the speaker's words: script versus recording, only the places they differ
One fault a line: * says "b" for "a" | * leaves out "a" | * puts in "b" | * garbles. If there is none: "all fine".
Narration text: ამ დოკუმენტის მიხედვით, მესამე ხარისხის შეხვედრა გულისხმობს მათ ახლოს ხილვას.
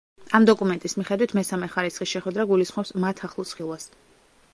all fine